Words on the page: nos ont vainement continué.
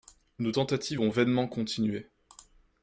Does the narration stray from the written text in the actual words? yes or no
yes